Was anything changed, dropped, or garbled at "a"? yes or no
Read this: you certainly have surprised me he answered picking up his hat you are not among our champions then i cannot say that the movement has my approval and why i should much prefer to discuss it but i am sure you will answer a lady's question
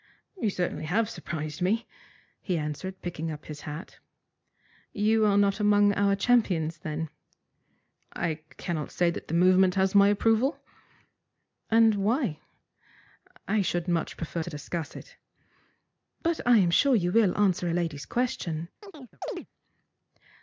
no